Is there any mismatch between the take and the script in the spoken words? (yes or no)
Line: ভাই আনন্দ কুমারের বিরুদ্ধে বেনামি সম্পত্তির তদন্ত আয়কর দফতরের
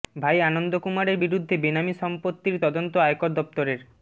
no